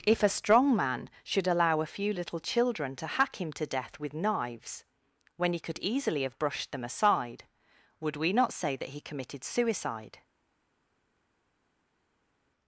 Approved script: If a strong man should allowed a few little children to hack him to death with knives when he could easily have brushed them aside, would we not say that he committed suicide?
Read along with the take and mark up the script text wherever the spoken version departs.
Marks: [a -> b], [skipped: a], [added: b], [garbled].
If a strong man should [allowed -> allow] a few little children to hack him to death with knives when he could easily have brushed them aside, would we not say that he committed suicide?